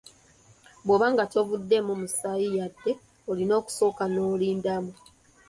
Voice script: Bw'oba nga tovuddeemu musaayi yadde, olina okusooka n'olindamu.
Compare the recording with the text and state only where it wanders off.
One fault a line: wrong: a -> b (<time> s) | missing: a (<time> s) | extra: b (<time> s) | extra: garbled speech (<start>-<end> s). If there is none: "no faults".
no faults